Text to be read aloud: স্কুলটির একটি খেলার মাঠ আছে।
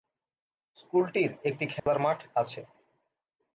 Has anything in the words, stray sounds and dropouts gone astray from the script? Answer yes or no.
yes